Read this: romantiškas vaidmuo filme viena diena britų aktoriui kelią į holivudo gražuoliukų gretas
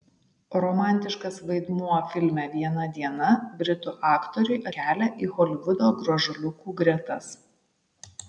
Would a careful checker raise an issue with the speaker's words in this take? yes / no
no